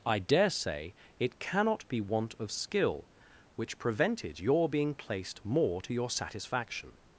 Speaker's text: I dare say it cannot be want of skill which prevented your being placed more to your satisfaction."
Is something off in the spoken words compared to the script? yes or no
no